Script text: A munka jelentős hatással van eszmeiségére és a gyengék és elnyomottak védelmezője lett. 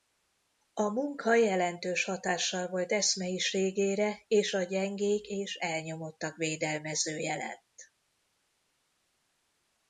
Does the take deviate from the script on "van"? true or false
true